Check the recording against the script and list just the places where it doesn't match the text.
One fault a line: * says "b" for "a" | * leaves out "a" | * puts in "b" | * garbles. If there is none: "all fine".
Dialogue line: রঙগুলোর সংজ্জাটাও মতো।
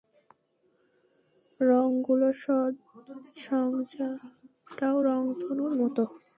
* puts in "রংধনুর"